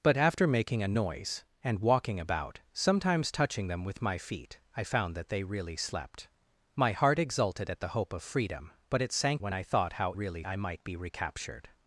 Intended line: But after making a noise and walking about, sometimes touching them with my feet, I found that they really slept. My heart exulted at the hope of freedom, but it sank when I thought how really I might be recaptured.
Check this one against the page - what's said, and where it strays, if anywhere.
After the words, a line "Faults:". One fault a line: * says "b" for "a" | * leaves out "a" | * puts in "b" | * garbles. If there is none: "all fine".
But after making a noise and walking about, sometimes touching them with my feet, I found that they really slept. My heart exulted at the hope of freedom, but it sank when I thought how really I might be recaptured.
Faults:
all fine